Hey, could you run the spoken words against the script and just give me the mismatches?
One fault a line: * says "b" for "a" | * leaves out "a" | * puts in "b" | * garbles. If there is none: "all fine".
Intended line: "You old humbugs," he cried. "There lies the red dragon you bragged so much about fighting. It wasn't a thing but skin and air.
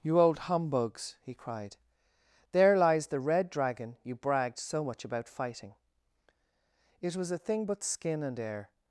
* says "was" for "wasn't"